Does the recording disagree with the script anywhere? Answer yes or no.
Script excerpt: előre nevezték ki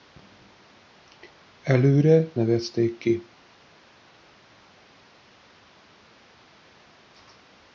no